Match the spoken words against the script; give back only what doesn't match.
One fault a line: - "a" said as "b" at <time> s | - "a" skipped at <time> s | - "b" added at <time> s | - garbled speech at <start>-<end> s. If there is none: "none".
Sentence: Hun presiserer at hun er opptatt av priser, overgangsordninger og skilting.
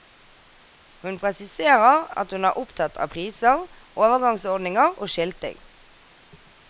none